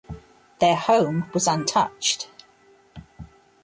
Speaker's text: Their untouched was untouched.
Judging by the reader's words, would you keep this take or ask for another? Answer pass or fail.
fail